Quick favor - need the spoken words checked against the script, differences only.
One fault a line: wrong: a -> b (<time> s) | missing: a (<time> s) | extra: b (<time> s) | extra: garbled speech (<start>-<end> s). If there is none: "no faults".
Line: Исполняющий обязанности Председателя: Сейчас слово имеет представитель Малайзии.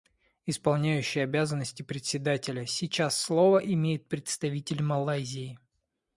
no faults